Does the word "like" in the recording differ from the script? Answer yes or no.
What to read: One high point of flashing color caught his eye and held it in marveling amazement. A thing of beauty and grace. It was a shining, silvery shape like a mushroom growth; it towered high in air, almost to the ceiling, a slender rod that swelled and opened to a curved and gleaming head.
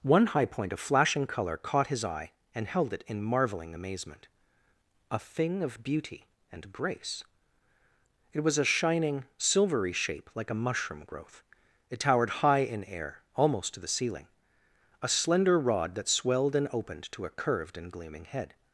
no